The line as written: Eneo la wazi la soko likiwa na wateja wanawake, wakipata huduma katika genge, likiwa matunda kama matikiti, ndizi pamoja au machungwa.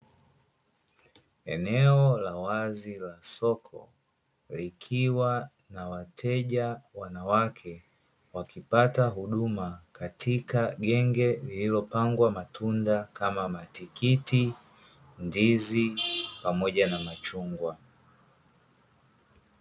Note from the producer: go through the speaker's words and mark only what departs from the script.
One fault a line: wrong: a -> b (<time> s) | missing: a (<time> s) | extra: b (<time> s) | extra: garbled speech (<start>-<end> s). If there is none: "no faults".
wrong: likiwa -> lililopangwa (11.3 s)
wrong: au -> na (16.9 s)